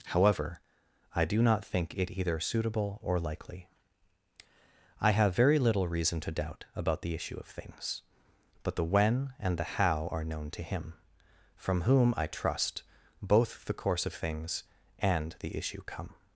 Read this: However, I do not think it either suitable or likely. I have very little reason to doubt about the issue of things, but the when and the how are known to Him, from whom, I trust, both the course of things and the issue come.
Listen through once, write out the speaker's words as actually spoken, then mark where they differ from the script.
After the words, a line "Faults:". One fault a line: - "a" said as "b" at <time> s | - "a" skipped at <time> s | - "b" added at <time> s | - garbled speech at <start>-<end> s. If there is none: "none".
However, I do not think it either suitable or likely. I have very little reason to doubt about the issue of things, but the when and the how are known to Him, from whom, I trust, both the course of things and the issue come.
Faults:
none